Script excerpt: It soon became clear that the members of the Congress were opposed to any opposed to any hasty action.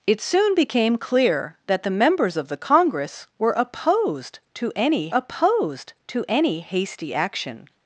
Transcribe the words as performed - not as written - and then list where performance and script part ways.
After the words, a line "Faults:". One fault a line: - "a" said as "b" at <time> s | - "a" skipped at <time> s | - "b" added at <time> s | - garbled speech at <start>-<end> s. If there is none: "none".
It soon became clear that the members of the Congress were opposed to any opposed to any hasty action.
Faults:
none